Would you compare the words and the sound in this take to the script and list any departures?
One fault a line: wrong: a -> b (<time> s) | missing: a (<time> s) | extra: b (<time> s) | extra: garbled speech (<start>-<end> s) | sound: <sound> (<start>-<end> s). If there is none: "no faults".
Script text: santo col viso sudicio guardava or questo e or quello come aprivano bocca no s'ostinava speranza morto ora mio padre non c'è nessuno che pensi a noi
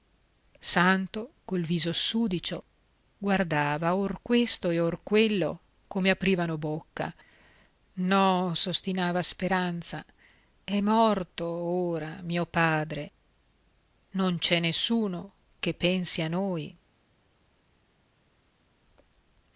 extra: è (10.6 s)